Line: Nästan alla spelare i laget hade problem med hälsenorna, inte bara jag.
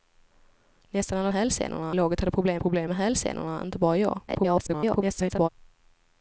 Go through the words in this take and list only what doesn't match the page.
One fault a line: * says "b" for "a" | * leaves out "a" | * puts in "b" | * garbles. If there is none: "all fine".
* says "hälsenorna" for "spelare"
* puts in "problem"
* garbles